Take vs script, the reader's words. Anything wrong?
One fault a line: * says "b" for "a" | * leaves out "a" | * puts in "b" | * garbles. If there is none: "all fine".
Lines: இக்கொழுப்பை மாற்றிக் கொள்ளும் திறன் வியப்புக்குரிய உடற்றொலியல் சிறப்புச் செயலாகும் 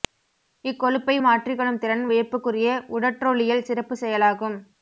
all fine